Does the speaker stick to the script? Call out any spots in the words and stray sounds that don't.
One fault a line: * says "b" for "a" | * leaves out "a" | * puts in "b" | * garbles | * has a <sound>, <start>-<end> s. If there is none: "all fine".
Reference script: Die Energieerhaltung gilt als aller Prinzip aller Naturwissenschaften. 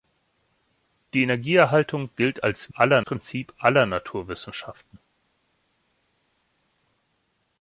all fine